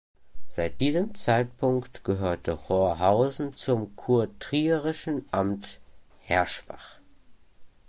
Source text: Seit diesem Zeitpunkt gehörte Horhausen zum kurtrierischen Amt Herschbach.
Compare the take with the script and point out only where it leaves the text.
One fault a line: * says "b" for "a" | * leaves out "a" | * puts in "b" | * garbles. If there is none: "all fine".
all fine